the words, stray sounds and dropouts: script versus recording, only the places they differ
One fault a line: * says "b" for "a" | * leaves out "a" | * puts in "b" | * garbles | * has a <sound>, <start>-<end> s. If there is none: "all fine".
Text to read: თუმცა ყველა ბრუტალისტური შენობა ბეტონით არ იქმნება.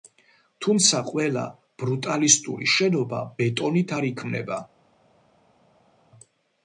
all fine